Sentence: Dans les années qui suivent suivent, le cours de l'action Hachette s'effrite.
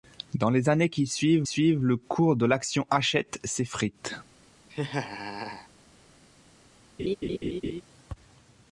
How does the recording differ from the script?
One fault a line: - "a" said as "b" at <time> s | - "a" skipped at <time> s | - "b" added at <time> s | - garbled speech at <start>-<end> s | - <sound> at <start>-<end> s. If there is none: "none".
- laugh at 4.7-5.7 s
- laugh at 7.0-7.8 s